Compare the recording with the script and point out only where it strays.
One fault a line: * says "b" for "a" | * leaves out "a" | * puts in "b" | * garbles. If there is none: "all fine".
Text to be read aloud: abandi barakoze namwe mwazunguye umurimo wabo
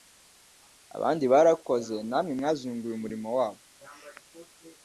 all fine